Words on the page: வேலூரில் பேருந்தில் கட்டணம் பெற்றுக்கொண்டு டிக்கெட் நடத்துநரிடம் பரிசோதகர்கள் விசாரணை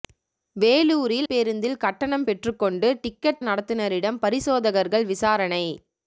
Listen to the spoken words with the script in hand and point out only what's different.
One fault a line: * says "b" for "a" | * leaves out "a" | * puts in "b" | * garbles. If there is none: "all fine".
all fine